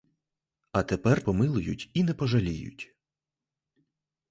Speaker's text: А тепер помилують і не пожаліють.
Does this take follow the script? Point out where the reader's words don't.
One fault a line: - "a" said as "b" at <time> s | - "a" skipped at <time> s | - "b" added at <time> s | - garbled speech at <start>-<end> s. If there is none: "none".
none